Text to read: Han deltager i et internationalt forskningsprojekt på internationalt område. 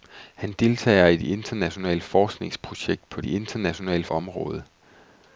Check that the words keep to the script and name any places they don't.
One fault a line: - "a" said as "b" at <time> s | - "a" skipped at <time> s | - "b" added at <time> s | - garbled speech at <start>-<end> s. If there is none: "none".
none